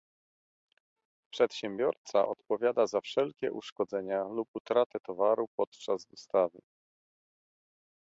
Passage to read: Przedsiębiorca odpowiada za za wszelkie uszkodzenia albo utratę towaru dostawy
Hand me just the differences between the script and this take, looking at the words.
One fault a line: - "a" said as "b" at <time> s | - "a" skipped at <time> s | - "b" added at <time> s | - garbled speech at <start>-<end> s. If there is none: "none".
- "za" skipped at 3.0 s
- "albo" said as "lub" at 4.2 s
- "podczas" added at 5.6 s